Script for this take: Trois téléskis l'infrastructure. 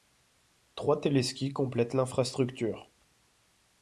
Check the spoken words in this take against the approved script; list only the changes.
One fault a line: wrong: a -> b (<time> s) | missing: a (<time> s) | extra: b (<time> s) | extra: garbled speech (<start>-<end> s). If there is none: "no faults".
extra: complètent (1.5 s)